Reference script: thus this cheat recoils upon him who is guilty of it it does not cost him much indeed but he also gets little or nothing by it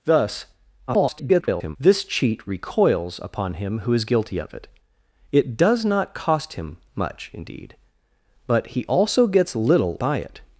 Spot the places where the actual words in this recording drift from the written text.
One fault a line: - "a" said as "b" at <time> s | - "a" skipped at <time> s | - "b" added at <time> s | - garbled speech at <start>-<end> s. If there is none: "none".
- garbled speech at 0.9-1.8 s
- "or nothing" skipped at 10.0 s